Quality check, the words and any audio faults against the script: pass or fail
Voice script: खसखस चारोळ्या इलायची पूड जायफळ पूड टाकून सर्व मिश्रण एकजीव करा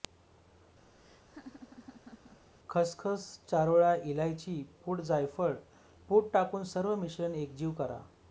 fail